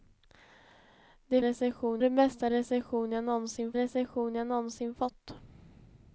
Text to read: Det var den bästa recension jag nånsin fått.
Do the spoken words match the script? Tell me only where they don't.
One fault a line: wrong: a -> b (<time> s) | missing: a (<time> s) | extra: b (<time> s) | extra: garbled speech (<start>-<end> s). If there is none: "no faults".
wrong: var -> recension (1.4 s)
extra: recension jag nånsin (3.7 s)